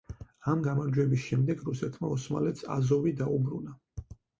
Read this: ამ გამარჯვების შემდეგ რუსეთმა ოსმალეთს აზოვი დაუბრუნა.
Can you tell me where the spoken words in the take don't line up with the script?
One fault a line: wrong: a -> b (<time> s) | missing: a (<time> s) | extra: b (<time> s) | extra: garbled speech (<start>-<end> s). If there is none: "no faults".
no faults